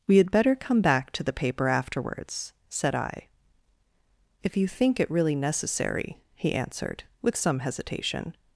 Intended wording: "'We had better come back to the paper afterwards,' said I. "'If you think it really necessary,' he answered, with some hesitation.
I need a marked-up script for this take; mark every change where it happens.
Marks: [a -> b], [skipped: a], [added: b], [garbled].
"'We had better come back to the paper afterwards,' said I. "'If you think it really necessary,' he answered, with some hesitation.